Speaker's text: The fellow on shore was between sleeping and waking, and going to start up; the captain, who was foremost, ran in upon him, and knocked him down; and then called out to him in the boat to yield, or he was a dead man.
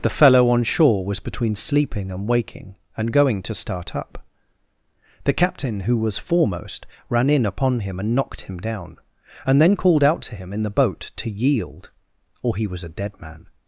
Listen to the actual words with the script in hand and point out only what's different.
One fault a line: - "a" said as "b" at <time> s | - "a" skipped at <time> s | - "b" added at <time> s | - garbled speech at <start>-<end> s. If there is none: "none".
none